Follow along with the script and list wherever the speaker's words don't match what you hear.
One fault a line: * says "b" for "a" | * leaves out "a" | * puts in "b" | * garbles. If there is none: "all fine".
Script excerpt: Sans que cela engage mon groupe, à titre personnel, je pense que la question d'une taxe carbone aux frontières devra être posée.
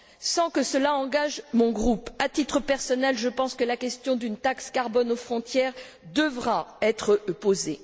all fine